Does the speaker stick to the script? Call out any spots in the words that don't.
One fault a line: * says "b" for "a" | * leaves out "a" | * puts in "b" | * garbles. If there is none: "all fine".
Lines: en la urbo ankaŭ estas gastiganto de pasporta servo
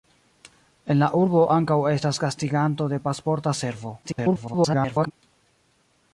* garbles